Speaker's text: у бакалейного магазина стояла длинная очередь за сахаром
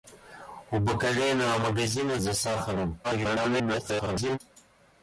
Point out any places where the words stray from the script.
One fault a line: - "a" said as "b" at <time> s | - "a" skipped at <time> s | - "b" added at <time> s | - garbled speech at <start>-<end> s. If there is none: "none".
- "стояла длинная очередь" skipped at 2.2 s
- garbled speech at 3.0-4.4 s